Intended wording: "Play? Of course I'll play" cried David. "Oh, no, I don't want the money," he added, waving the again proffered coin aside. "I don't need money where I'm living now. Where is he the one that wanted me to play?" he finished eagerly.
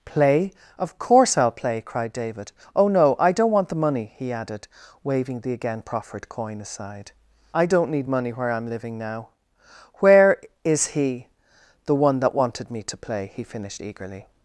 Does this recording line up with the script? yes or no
yes